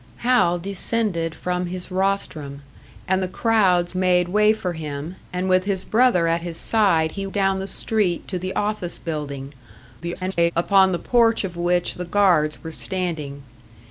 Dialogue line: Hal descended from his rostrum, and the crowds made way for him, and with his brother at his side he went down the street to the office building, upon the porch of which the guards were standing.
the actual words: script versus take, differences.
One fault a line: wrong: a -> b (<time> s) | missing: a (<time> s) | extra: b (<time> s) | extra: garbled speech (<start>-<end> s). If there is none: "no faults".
missing: went (7.3 s)
extra: garbled speech (10.0-10.5 s)